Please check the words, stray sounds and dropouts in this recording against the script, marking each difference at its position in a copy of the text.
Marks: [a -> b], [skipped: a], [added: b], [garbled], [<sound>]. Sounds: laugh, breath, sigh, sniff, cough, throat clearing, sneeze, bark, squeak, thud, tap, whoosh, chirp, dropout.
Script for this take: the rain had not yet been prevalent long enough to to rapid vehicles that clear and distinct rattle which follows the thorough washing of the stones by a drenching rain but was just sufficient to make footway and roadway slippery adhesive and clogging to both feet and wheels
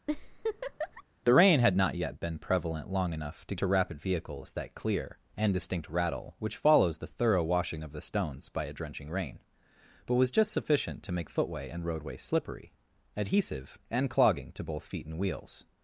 [laugh] the rain had not yet been prevalent long enough to to rapid vehicles that clear and distinct rattle which follows the thorough washing of the stones by a drenching rain but was just sufficient to make footway and roadway slippery adhesive and clogging to both feet and wheels